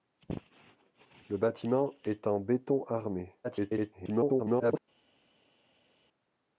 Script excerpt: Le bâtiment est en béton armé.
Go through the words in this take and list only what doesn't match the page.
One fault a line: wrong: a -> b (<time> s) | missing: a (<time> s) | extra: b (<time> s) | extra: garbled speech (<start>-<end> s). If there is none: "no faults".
extra: garbled speech (3.4-4.8 s)